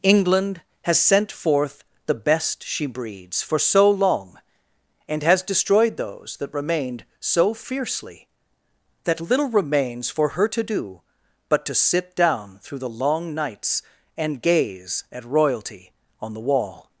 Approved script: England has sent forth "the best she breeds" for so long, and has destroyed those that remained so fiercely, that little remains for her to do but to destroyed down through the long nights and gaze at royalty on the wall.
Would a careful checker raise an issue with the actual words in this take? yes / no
yes